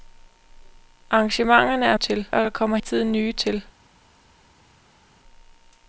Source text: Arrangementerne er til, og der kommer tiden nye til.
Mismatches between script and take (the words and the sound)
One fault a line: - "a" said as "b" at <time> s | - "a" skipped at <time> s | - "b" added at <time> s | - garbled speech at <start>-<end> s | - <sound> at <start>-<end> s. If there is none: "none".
none